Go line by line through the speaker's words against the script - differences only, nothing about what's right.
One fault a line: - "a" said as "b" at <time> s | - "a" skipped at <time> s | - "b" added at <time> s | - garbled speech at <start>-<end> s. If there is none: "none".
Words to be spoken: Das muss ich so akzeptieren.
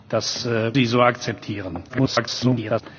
- "muss" skipped at 0.5 s
- garbled speech at 1.9-2.8 s